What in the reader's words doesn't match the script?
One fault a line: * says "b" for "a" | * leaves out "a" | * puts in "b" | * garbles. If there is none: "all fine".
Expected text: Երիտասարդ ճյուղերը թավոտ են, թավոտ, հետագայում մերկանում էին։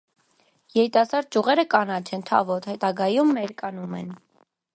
* says "կանաչ" for "թավոտ"
* says "են" for "էին"